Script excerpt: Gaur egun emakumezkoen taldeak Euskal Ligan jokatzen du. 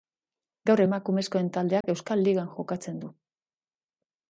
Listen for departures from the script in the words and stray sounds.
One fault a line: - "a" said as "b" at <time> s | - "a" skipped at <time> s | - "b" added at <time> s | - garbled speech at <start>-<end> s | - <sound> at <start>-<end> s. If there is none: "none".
- "egun" skipped at 0.8 s
- dropout at 1.8-1.8 s